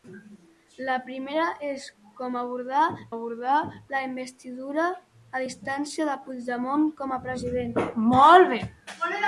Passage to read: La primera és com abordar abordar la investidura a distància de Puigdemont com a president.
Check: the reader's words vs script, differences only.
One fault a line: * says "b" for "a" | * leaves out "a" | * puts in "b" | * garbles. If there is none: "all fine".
all fine